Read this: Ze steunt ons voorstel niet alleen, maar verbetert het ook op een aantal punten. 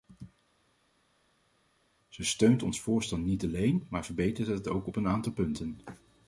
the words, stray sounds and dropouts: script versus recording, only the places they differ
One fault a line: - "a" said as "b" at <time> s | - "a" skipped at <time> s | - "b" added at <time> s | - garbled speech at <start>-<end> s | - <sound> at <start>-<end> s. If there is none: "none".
none